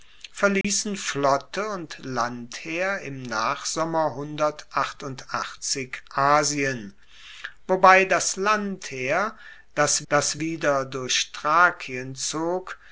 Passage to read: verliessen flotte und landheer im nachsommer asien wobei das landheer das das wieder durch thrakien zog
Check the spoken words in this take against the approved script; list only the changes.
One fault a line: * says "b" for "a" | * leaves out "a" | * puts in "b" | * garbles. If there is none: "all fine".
all fine